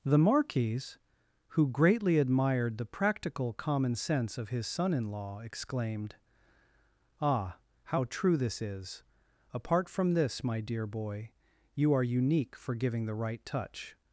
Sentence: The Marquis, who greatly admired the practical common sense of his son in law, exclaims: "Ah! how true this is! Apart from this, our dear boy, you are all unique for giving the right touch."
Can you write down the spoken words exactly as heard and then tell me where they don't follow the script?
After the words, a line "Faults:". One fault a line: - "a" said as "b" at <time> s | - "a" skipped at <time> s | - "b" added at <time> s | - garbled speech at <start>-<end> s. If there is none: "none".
The Marquis, who greatly admired the practical common sense of his son in law, exclaimed: "Ah! how true this is! Apart from this, my dear boy, you are unique for giving the right touch."
Faults:
- "exclaims" said as "exclaimed" at 5.4 s
- "our" said as "my" at 10.4 s
- "all" skipped at 12.0 s